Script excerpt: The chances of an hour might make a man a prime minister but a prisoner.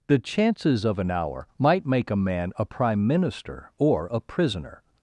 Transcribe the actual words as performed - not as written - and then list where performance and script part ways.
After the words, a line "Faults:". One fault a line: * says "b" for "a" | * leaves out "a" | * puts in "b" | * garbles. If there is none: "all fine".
The chances of an hour might make a man a prime minister or a prisoner.
Faults:
* says "or" for "but"